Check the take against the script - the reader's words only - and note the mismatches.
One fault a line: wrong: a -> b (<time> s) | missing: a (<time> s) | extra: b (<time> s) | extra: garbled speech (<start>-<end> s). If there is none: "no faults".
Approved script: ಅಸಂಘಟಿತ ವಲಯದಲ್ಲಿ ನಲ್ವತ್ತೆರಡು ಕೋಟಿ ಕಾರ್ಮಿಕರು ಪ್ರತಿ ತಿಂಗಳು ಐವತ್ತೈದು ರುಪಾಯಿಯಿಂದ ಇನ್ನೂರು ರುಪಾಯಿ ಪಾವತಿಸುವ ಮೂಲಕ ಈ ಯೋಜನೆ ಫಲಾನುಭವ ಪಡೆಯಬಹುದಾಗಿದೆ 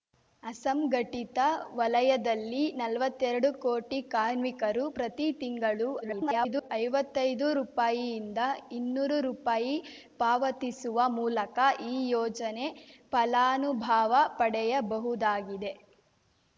extra: garbled speech (6.0-6.7 s)